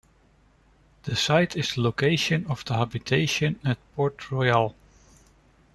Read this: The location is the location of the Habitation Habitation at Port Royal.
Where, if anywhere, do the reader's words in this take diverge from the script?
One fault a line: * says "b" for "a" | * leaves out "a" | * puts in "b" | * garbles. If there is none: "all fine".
* says "site" for "location"
* leaves out "Habitation"